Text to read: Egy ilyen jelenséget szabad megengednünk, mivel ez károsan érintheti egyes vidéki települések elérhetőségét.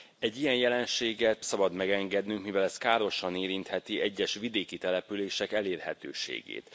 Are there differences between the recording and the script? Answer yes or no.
no